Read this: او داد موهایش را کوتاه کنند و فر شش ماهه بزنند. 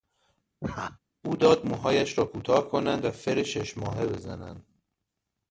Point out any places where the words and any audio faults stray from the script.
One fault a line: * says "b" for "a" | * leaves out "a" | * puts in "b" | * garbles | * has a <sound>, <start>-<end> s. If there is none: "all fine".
* has a laugh, 0.6-1.0 s